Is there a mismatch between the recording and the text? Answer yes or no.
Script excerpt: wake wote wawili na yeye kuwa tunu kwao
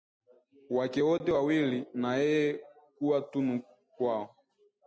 no